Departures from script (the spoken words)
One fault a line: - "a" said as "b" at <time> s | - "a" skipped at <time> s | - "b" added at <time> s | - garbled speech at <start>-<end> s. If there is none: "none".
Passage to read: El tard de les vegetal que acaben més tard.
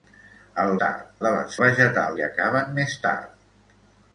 none